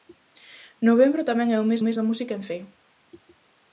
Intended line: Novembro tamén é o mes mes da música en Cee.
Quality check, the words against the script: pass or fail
pass